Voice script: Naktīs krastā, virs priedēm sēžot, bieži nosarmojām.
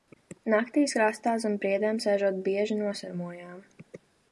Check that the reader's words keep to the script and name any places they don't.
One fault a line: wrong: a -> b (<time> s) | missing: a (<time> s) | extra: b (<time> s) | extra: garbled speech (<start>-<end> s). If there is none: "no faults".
wrong: virs -> zem (1.5 s)